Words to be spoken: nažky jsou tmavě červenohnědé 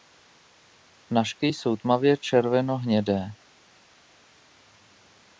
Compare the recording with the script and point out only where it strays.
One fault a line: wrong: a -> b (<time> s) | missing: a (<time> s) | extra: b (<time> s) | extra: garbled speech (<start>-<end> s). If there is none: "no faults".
no faults